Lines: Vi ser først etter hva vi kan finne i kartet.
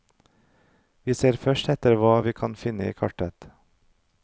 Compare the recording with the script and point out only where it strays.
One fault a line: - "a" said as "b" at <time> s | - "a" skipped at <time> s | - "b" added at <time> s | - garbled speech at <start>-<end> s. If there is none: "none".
none